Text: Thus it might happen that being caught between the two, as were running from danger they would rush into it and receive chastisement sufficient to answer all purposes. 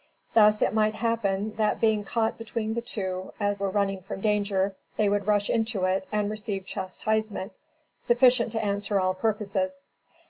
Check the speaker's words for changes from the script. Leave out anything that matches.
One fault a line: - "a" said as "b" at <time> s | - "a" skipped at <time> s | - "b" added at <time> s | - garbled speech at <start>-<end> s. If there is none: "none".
none